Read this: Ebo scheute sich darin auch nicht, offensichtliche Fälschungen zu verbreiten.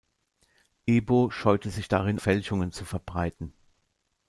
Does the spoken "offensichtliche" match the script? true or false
false